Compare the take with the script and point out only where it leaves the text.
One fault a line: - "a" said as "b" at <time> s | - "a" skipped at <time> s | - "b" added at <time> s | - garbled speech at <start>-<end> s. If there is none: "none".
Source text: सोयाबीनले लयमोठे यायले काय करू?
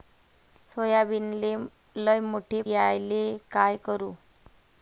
none